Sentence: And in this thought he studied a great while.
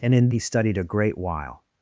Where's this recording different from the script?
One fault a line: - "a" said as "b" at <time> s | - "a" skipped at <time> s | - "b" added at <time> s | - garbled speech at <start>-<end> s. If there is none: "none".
- "this thought" skipped at 0.3 s